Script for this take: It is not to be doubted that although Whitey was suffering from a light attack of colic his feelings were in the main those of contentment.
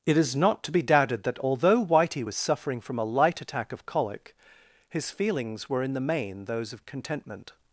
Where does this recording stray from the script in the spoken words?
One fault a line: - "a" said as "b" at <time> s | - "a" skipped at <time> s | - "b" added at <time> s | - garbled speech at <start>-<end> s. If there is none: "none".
none